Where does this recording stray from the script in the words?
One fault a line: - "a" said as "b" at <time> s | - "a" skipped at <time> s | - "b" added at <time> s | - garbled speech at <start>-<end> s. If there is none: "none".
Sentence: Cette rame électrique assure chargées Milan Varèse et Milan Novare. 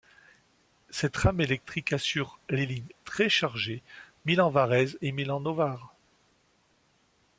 - "les lignes très" added at 2.5 s